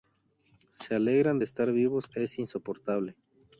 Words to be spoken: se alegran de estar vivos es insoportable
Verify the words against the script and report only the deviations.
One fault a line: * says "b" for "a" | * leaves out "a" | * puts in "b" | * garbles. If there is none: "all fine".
all fine